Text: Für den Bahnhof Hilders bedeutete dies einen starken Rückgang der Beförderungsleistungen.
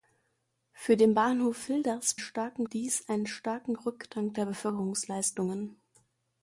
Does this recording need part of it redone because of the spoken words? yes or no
yes